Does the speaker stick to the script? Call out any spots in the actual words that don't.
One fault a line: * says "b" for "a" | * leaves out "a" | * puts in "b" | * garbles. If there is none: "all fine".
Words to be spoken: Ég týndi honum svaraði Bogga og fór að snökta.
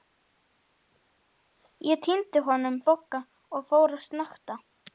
* leaves out "svaraði"